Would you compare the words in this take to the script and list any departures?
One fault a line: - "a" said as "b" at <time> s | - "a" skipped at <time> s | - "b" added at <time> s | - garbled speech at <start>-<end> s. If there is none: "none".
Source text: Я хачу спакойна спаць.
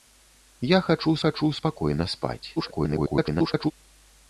- "хачу" added at 1.2 s
- garbled speech at 2.6-3.7 s